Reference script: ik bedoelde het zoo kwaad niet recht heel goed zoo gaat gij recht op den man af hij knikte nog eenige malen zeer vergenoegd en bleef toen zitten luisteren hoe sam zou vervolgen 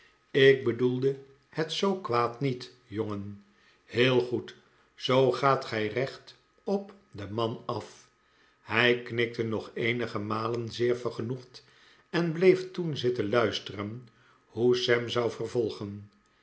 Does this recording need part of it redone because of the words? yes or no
yes